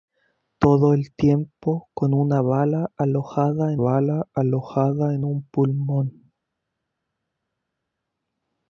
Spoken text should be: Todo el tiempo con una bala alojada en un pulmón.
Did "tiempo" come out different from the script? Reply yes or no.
no